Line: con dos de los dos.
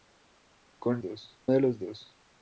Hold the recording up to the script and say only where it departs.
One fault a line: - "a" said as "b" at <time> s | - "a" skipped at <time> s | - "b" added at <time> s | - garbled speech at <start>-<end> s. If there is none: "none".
none